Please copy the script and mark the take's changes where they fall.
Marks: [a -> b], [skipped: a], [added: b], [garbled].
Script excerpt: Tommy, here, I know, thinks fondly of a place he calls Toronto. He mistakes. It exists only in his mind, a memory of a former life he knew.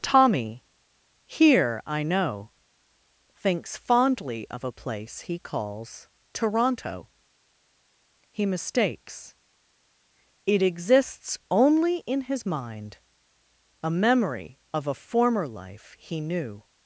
Tommy, here, I know, thinks fondly of a place he calls Toronto. He mistakes. It exists only in his mind, a memory of a former life he knew.